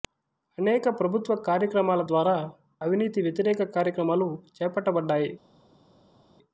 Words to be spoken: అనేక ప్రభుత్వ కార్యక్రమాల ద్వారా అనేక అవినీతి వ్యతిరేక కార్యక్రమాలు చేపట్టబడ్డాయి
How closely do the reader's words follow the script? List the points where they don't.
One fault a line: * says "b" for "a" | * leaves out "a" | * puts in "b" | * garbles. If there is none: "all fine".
* leaves out "అనేక"